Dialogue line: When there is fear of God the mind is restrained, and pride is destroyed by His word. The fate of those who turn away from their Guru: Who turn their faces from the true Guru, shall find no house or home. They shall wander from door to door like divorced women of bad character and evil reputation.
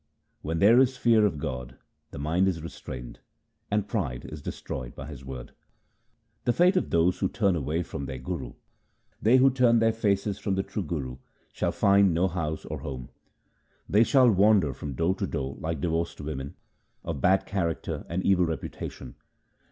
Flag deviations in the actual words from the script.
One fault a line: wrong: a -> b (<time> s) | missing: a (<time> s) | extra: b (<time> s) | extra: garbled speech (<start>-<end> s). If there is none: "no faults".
extra: They (9.2 s)